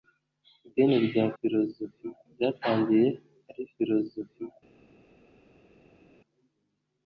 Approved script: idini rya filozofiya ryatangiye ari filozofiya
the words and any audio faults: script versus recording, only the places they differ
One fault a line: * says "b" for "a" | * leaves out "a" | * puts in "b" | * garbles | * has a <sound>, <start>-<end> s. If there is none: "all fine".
all fine